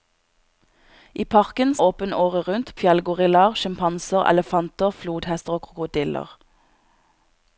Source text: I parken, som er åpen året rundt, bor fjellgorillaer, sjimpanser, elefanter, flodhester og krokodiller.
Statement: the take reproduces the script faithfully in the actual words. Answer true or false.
false